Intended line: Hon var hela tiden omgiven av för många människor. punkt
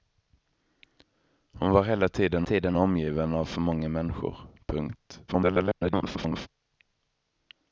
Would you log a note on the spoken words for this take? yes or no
yes